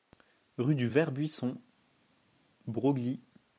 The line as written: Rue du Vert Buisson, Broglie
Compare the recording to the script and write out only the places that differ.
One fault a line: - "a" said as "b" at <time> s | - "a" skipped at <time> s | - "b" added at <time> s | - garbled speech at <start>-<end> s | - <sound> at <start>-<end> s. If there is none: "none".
none